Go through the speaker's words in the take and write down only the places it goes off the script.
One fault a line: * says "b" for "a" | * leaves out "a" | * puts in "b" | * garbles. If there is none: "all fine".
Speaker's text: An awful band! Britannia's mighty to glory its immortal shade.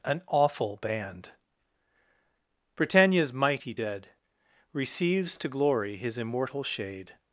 * puts in "dead Receives"
* says "his" for "its"